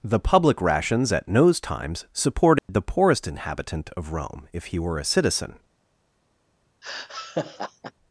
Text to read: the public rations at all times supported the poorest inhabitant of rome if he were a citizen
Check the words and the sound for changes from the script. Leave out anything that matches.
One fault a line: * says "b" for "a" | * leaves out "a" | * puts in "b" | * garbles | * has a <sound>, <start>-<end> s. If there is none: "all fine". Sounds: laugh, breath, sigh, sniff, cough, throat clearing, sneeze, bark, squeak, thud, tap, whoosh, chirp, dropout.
* says "nose" for "all"
* has a dropout, 2.6-2.7 s
* has a laugh, 6.8-7.9 s